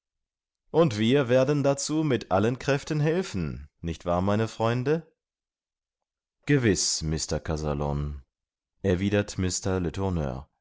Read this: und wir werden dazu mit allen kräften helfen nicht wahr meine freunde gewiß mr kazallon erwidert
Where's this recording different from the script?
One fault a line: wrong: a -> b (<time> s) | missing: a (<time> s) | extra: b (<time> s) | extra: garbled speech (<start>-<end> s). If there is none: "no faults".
no faults